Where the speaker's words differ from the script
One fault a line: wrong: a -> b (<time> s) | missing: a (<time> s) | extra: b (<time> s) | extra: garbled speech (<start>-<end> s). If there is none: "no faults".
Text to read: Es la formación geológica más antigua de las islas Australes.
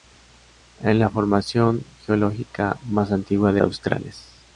missing: las islas (3.6 s)